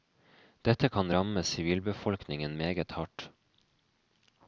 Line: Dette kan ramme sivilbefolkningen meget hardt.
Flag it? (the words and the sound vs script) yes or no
no